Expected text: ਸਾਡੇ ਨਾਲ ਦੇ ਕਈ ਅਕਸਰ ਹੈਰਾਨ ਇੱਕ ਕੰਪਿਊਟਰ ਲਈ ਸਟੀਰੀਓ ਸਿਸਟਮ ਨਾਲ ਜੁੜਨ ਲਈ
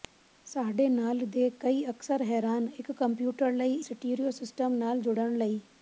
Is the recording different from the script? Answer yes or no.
no